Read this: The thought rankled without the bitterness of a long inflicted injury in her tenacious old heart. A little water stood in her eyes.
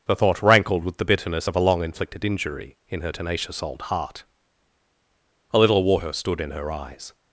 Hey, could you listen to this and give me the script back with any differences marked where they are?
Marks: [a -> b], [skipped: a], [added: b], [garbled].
The thought rankled [without -> with] the bitterness of a long inflicted injury in her tenacious old heart. A little water stood in her eyes.